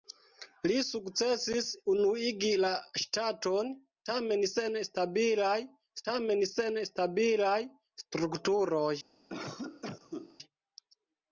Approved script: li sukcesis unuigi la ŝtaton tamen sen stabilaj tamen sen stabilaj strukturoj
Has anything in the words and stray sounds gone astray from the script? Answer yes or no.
yes